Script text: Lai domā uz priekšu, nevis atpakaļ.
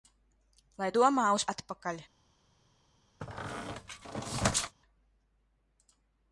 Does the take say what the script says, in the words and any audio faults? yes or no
no